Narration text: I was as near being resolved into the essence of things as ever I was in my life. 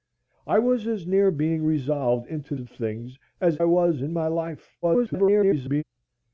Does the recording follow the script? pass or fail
fail